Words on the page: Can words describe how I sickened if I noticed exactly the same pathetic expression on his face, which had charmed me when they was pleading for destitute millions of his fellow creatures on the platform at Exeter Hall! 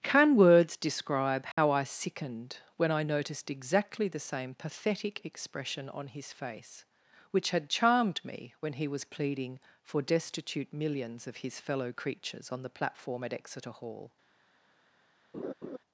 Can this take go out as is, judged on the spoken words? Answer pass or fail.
fail